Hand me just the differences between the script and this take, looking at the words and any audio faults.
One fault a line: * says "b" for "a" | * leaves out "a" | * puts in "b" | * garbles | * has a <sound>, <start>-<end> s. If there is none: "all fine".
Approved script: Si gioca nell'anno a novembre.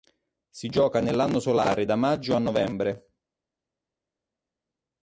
* puts in "solare da maggio"